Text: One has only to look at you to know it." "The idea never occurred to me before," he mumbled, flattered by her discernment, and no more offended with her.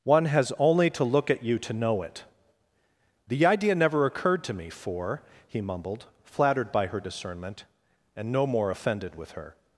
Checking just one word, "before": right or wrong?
wrong